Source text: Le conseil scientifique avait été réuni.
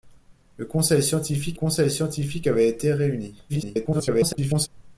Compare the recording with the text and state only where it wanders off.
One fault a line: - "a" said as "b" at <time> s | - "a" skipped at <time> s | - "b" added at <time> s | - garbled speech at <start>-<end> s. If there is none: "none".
- "conseil scientifique" added at 1.5 s
- garbled speech at 3.5-4.7 s